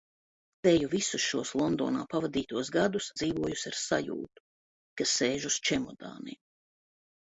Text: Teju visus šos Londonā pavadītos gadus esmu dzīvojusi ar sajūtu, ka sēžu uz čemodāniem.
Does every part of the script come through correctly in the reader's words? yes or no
no